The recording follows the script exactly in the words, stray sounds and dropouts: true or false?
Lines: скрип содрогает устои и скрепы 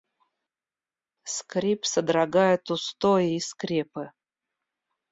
true